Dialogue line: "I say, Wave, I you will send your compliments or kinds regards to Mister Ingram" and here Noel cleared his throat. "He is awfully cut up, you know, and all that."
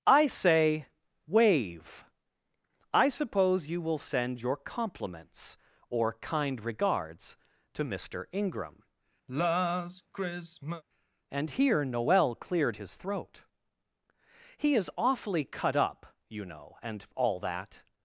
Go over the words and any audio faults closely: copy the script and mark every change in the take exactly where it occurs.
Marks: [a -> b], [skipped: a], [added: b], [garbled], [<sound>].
"I say, Wave, I [added: suppose] you will send your compliments or [kinds -> kind] regards to Mister Ingram" [sigh] and here Noel cleared his throat. "He is awfully cut up, you know, and all that."